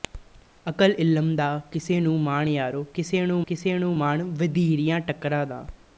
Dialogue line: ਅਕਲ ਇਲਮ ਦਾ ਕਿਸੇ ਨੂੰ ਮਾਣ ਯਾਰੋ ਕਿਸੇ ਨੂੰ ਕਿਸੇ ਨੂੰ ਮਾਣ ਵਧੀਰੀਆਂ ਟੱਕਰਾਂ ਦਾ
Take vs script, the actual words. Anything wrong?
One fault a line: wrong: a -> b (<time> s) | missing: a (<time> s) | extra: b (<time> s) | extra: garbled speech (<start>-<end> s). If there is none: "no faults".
no faults